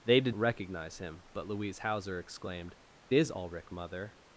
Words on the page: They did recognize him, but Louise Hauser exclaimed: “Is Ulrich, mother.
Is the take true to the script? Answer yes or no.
yes